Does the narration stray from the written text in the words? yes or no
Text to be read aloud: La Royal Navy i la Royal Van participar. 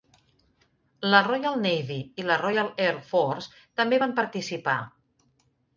yes